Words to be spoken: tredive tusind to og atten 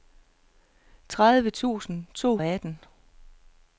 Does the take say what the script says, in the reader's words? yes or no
yes